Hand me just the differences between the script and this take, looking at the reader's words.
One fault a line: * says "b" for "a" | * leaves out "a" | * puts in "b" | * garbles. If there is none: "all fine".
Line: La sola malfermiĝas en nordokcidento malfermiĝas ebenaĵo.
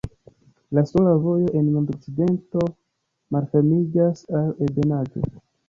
* says "vojo" for "malfermiĝas"
* puts in "al"